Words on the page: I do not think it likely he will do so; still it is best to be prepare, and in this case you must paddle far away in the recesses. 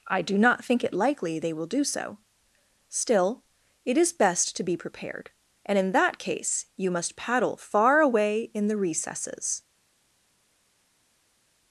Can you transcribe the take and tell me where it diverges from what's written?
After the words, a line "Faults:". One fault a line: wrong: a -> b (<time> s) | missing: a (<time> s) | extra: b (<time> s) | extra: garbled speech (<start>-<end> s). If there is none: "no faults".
I do not think it likely they will do so; still it is best to be prepared, and in that case you must paddle far away in the recesses.
Faults:
wrong: he -> they (1.4 s)
wrong: prepare -> prepared (4.8 s)
wrong: this -> that (5.9 s)